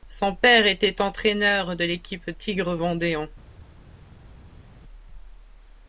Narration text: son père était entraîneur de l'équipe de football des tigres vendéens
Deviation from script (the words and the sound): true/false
true